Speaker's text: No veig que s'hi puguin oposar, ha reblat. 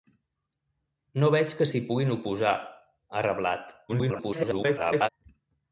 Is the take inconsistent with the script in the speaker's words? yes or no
yes